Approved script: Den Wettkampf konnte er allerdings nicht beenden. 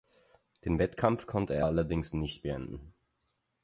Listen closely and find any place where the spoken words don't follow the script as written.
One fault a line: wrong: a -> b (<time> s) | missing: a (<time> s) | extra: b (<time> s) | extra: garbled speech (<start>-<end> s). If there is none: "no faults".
no faults